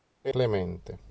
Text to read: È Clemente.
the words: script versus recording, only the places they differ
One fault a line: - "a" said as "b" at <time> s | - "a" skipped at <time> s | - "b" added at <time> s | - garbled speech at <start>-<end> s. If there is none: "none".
none